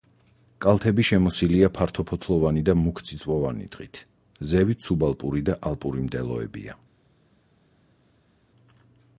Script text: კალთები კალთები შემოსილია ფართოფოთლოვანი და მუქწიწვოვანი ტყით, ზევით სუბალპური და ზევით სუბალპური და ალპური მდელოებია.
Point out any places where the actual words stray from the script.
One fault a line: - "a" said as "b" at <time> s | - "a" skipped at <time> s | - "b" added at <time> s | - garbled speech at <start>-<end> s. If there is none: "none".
- "კალთები" skipped at 1.0 s
- "ზევით სუბალპური და" skipped at 5.6 s